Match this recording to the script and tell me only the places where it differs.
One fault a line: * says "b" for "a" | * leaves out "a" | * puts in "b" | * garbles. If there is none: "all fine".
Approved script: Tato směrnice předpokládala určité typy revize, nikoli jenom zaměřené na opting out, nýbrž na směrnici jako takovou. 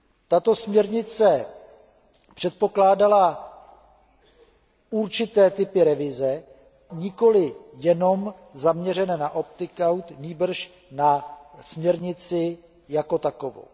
all fine